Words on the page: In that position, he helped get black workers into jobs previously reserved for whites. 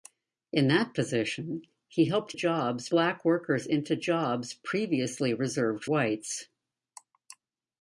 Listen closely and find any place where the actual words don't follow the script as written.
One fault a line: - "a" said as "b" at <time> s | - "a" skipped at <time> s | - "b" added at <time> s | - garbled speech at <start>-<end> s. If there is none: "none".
- "get" said as "jobs" at 2.3 s
- "for" skipped at 5.8 s